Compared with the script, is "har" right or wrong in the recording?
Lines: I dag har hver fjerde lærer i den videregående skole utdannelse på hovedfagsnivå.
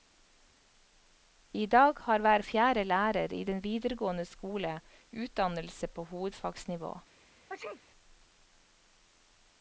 right